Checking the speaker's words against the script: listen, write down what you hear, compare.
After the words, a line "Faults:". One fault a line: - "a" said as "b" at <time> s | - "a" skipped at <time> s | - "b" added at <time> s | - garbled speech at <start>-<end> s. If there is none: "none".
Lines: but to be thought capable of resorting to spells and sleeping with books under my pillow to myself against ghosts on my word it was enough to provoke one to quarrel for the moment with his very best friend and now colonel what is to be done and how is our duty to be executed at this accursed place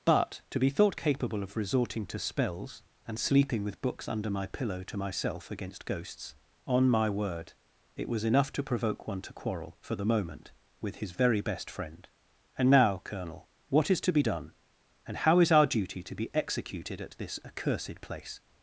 but to be thought capable of resorting to spells and sleeping with books under my pillow to myself against ghosts on my word it was enough to provoke one to quarrel for the moment with his very best friend and now colonel what is to be done and how is our duty to be executed at this accursed place
Faults:
none